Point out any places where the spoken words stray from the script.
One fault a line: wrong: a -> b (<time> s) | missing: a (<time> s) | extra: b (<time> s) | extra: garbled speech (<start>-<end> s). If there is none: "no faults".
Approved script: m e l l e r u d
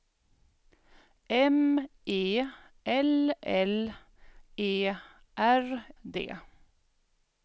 missing: u (5.8 s)